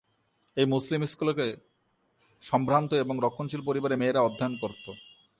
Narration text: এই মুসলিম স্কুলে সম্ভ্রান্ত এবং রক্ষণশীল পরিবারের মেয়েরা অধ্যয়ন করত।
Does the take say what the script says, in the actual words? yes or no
yes